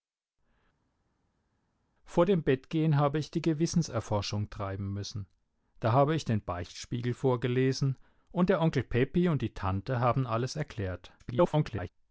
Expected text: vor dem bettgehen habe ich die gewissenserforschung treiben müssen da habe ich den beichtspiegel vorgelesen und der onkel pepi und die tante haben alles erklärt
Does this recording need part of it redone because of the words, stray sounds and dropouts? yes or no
yes